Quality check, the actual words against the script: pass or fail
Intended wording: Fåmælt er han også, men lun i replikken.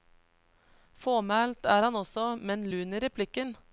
pass